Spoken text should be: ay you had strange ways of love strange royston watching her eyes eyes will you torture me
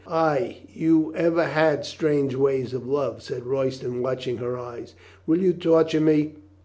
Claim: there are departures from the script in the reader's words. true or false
true